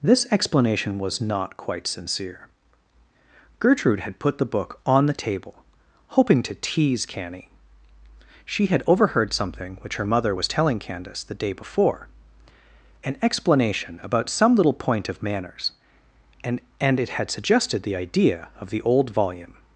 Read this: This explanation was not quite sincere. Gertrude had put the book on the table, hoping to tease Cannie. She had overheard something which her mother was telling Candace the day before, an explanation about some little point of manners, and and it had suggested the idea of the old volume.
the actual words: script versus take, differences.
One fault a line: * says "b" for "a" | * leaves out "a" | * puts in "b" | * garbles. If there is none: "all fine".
all fine